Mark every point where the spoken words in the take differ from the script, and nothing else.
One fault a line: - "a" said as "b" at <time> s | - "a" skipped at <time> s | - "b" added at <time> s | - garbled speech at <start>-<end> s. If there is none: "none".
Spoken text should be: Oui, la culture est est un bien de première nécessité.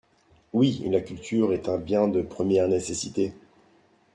- "est" skipped at 1.7 s